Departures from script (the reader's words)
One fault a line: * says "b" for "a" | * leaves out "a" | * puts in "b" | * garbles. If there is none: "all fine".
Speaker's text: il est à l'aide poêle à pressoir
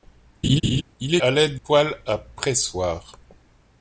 all fine